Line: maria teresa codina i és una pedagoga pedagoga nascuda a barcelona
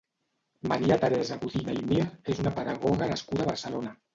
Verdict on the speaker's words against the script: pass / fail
fail